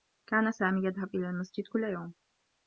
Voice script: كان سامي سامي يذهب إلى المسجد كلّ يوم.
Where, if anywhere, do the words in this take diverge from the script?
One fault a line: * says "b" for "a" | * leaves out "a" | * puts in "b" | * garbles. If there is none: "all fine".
* leaves out "سامي"